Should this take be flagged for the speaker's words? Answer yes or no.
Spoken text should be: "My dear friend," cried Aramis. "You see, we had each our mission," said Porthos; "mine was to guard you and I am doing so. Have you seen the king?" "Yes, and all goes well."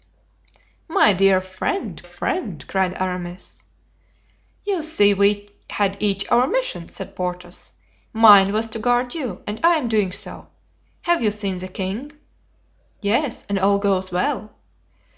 yes